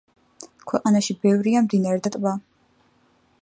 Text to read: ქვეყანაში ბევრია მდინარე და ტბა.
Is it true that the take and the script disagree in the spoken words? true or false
false